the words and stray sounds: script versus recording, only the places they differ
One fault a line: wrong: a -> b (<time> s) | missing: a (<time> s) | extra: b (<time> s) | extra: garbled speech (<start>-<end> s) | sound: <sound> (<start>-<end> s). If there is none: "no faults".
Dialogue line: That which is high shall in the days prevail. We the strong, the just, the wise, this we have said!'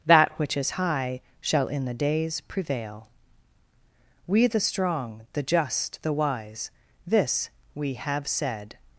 no faults